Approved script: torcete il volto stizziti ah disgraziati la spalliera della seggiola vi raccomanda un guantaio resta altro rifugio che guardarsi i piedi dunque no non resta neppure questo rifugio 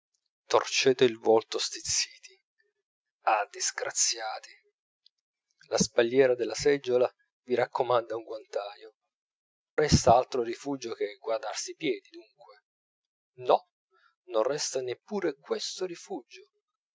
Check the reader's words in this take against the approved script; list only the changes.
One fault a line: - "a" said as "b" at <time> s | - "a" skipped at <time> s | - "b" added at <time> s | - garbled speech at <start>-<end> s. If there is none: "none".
none